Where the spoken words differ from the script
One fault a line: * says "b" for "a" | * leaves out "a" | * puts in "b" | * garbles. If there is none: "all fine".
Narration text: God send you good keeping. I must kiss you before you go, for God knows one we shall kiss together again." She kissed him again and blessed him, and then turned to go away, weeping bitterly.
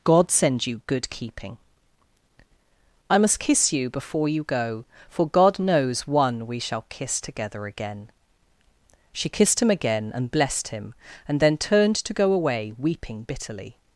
all fine